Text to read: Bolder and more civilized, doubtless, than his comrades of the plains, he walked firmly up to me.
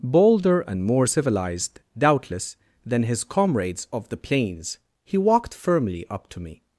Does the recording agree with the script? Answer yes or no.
yes